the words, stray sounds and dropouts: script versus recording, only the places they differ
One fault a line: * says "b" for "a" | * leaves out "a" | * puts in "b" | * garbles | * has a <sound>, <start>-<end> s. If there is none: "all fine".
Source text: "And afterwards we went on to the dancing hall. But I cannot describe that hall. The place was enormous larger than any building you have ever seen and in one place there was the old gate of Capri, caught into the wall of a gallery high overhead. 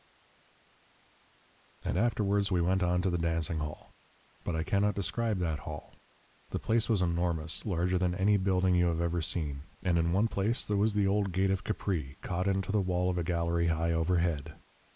all fine